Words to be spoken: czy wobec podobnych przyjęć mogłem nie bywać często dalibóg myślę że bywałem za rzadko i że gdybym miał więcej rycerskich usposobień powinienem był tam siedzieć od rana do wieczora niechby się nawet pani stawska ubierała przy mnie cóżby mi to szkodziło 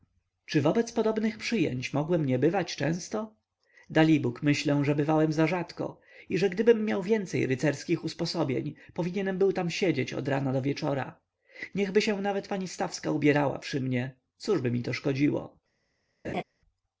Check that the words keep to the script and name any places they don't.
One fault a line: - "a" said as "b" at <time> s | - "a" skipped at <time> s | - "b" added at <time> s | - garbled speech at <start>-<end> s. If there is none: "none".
none